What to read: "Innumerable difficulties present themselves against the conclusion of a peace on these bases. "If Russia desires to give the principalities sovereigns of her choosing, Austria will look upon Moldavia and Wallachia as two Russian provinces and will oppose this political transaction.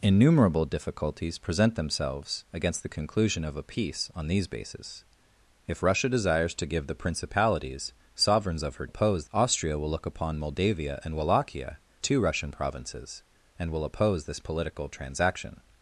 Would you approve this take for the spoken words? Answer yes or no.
no